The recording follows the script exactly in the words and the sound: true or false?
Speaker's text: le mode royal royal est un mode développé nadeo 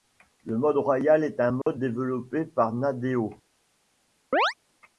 false